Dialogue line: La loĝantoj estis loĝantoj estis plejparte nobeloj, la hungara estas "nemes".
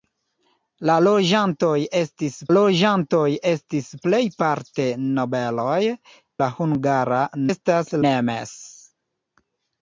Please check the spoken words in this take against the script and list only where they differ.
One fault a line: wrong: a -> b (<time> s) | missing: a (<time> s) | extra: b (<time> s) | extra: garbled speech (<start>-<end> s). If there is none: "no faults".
no faults